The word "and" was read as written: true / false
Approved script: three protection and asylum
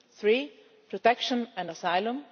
true